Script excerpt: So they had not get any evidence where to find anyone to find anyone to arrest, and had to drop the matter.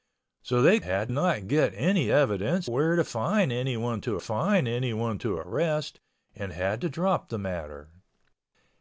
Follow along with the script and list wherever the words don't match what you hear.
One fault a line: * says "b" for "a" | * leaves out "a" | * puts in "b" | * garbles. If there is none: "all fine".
all fine